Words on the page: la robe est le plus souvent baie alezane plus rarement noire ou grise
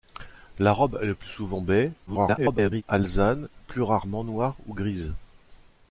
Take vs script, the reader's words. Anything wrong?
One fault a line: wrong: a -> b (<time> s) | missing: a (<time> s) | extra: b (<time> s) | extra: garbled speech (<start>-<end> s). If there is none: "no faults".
extra: garbled speech (2.1-2.8 s)